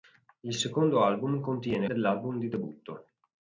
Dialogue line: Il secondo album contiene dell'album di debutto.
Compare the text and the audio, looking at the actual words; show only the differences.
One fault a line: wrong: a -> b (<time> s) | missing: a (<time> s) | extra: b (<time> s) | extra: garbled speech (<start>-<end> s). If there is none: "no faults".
no faults